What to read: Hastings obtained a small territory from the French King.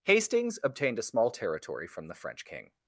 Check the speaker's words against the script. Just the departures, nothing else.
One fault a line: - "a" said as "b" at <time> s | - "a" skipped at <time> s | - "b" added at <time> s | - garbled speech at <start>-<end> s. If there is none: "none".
none